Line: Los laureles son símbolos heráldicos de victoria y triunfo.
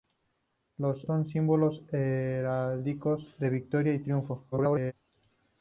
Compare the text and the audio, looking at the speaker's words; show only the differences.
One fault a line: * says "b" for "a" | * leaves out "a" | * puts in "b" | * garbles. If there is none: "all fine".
* leaves out "laureles"
* garbles